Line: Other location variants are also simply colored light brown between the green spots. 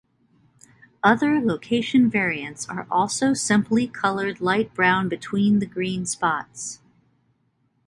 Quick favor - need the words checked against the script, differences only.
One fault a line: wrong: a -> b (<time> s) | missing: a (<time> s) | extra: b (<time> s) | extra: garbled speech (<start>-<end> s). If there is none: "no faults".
no faults